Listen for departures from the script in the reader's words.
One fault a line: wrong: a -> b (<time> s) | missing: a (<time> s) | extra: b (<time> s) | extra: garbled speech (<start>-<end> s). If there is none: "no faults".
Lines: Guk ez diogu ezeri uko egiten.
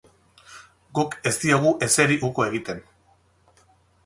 no faults